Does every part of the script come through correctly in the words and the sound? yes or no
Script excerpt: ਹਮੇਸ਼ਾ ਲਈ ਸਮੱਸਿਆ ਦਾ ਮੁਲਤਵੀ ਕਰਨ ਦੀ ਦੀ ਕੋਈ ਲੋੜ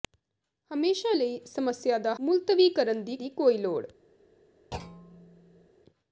no